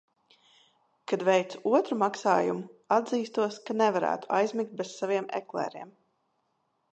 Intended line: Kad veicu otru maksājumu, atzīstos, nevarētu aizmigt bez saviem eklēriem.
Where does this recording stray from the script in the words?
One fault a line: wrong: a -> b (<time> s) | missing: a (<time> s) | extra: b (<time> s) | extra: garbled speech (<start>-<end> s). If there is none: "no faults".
extra: ka (3.7 s)